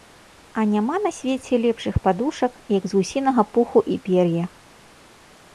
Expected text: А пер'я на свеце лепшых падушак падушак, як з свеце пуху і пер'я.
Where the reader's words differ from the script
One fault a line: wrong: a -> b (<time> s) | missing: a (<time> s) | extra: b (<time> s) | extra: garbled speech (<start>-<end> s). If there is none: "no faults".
wrong: пер'я -> няма (0.7 s)
missing: падушак (2.5 s)
wrong: свеце -> гусінага (3.0 s)